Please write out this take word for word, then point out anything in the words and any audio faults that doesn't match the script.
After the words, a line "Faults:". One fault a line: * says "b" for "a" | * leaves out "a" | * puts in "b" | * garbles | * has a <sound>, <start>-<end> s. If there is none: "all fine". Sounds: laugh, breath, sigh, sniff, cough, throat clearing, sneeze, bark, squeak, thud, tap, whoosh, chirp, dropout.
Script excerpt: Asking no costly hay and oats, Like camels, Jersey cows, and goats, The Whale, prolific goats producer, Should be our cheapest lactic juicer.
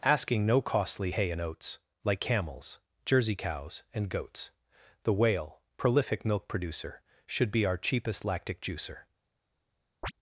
Asking no costly hay and oats, Like camels, Jersey cows, and goats, The Whale, prolific milk producer, Should be our cheapest lactic juicer.
Faults:
* says "milk" for "goats"
* has a chirp, 10.0-10.1 s